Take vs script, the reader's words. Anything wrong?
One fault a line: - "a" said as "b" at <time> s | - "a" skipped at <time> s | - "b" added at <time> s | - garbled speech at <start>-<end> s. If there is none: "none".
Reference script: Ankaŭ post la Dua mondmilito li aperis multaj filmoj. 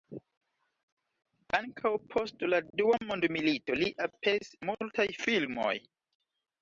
none